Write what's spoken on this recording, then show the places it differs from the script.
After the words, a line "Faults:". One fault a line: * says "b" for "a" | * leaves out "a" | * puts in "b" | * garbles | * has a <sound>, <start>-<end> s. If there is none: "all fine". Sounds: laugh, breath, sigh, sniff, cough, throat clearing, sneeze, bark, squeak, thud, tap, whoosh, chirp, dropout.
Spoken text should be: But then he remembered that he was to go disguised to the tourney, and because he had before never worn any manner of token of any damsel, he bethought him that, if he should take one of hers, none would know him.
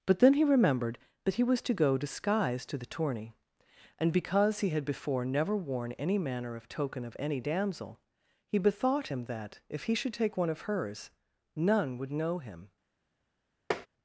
But then he remembered that he was to go disguised to the tourney, and because he had before never worn any manner of token of any damsel, he bethought him that, if he should take one of hers, none would know him.
Faults:
* has a tap, 13.7-13.9 s